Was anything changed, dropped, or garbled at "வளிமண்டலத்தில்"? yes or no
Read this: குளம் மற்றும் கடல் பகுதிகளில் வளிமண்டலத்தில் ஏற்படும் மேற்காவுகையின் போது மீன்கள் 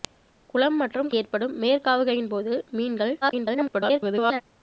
yes